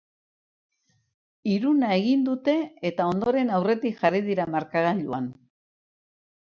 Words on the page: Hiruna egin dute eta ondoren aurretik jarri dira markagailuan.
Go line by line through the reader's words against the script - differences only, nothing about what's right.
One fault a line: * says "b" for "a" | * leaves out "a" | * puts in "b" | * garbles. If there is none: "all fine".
all fine